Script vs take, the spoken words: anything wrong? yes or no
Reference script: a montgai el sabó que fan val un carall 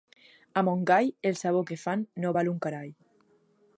yes